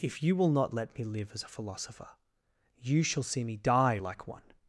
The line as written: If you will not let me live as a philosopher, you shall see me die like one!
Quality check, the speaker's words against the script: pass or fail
pass